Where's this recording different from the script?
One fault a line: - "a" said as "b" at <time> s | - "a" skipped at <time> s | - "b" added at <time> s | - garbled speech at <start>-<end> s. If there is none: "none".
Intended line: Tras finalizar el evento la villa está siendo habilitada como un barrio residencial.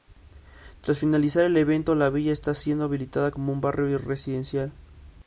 none